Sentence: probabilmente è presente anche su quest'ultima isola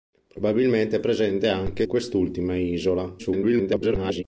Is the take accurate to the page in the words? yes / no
no